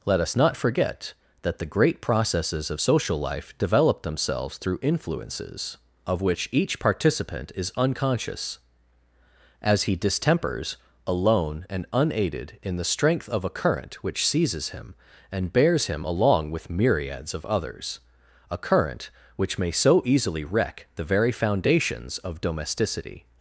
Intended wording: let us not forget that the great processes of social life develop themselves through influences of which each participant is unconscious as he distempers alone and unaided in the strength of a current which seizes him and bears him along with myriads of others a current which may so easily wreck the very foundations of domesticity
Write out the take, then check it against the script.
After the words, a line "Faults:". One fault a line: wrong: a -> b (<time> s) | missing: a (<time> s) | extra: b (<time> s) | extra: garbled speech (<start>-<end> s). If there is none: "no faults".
let us not forget that the great processes of social life develop themselves through influences of which each participant is unconscious as he distempers alone and unaided in the strength of a current which seizes him and bears him along with myriads of others a current which may so easily wreck the very foundations of domesticity
Faults:
no faults